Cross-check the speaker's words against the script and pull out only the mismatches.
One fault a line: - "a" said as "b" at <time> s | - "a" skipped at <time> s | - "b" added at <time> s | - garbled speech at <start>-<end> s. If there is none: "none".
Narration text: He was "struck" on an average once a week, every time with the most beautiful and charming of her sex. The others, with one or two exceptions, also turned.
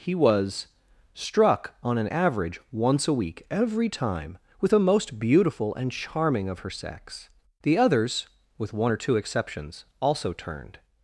- "the" said as "a" at 4.7 s